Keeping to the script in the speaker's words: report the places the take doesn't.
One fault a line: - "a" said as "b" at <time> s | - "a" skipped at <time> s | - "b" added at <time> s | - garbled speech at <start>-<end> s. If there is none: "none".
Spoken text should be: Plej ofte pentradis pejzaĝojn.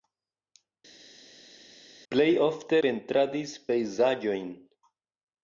none